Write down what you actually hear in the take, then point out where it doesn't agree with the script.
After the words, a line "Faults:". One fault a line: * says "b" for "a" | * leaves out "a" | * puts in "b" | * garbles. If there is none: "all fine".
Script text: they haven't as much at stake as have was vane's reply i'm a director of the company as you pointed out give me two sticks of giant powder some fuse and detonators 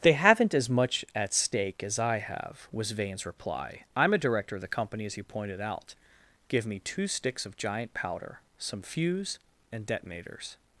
they haven't as much at stake as i have was vane's reply i'm a director of the company as you pointed out give me two sticks of giant powder some fuse and detonators
Faults:
* puts in "i"